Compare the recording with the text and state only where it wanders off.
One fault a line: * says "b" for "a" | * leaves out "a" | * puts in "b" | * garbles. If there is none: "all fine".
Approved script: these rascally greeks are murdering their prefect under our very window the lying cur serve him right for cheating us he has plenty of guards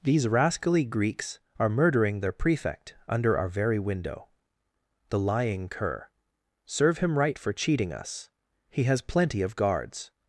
all fine